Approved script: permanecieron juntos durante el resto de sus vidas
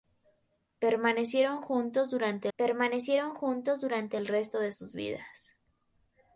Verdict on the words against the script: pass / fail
fail